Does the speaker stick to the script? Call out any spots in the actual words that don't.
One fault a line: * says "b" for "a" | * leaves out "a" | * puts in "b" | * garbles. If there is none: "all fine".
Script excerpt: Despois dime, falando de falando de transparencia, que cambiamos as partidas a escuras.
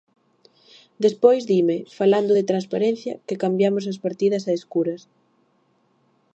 * leaves out "falando de"